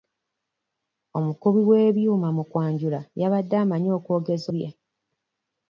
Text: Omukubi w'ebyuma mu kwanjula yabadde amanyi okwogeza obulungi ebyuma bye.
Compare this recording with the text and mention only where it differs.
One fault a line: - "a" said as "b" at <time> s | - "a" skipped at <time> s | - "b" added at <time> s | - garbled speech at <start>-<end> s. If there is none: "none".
- "obulungi ebyuma" skipped at 4.5 s